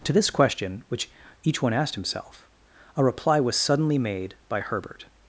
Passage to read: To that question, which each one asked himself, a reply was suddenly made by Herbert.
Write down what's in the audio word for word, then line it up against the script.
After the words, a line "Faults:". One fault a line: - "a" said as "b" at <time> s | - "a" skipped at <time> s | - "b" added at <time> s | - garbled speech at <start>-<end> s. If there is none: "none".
To this question, which each one asked himself, a reply was suddenly made by Herbert.
Faults:
- "that" said as "this" at 0.1 s